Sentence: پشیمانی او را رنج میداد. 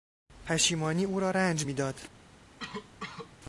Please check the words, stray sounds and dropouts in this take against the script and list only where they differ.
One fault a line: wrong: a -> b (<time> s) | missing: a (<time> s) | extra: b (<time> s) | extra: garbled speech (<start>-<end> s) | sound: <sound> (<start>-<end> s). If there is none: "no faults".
sound: cough (2.6-3.3 s)